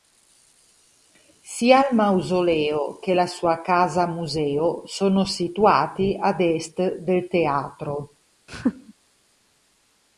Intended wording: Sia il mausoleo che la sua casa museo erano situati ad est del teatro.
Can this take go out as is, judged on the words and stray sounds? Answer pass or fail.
fail